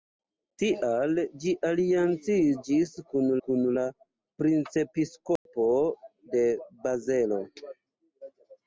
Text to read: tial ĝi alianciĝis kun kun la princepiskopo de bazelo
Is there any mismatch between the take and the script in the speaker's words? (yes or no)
no